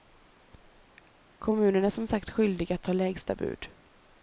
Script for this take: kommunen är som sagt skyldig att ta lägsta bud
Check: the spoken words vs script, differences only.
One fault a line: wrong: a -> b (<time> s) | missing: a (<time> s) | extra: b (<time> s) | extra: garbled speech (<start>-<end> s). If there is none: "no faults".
no faults